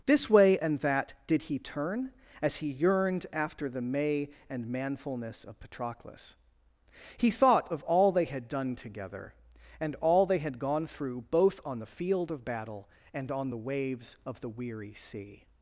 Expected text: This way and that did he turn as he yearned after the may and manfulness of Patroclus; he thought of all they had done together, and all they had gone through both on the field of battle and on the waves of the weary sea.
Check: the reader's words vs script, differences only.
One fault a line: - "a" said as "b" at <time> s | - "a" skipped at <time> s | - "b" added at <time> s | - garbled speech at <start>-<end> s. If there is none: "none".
none